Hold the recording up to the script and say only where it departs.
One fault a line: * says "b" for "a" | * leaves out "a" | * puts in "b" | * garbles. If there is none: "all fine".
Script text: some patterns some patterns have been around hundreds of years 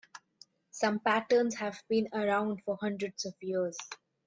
* leaves out "some patterns"
* puts in "for"